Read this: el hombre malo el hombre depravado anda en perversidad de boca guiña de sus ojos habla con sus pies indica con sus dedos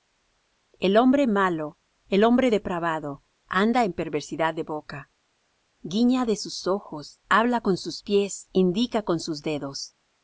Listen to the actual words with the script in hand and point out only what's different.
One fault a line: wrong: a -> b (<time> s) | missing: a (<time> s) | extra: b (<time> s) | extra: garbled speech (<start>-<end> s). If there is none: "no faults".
no faults